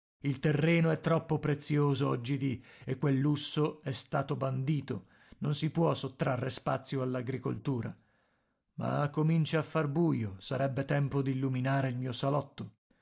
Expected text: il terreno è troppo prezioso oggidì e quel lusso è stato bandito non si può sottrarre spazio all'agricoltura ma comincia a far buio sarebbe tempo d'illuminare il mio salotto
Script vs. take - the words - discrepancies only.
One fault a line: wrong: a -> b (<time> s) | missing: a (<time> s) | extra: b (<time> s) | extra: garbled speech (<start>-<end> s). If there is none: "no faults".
no faults